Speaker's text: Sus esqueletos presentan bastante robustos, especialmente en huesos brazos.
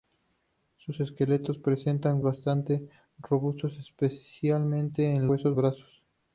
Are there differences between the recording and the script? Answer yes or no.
no